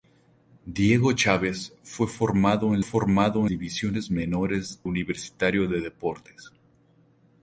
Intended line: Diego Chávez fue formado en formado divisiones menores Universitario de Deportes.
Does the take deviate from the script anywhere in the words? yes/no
no